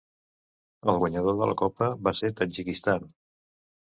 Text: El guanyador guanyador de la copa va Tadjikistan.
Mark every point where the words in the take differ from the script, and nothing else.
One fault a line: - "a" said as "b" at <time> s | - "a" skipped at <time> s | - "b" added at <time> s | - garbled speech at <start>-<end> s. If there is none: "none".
- "guanyador" skipped at 1.3 s
- "ser" added at 2.2 s